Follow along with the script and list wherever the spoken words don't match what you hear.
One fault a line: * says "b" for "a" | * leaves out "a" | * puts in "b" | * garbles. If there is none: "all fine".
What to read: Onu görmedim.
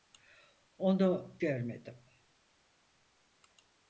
all fine